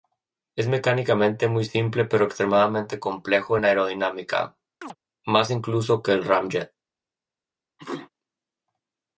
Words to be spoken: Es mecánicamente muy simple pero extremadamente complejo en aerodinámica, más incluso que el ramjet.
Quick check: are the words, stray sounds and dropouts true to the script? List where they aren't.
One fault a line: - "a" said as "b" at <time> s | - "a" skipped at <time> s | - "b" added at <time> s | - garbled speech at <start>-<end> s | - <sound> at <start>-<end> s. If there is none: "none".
- chirp at 4.8-5.0 s
- sneeze at 7.8-8.1 s